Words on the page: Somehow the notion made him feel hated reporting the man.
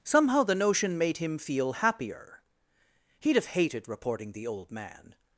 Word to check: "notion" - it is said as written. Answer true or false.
true